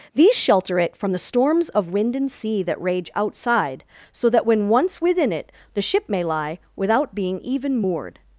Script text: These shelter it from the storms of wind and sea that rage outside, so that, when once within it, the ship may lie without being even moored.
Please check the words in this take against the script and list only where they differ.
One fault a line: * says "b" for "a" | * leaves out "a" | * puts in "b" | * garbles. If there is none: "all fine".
all fine